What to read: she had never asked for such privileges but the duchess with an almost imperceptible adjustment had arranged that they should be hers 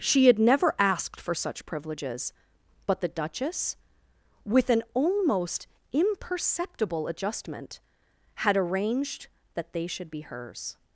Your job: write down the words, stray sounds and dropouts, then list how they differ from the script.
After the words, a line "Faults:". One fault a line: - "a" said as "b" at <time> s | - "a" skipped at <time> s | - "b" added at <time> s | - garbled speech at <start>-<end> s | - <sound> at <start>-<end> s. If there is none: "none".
she had never asked for such privileges but the duchess with an almost imperceptible adjustment had arranged that they should be hers
Faults:
none